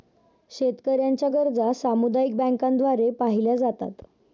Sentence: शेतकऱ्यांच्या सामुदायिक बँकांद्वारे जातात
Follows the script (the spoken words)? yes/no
no